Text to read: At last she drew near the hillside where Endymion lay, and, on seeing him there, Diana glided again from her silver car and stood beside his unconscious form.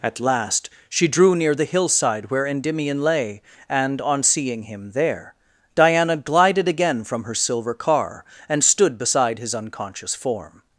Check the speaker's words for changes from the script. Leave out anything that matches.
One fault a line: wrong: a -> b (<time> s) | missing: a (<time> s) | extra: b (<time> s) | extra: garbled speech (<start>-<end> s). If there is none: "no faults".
no faults